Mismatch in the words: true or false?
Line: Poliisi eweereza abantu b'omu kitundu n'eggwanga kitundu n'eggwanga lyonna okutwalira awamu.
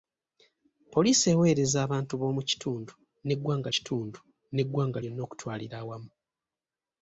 false